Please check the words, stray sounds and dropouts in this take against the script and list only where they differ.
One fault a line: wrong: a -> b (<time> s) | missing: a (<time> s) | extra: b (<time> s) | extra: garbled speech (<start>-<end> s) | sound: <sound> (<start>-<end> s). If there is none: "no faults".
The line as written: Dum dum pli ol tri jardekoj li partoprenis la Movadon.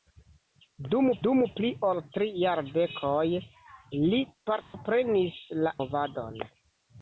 sound: dropout (4.6-4.7 s)